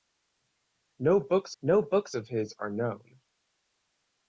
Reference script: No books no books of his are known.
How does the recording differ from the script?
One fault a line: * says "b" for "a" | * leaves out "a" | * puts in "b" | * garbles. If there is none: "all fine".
all fine